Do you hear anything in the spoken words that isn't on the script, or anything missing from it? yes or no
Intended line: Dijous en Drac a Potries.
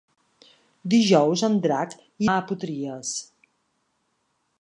no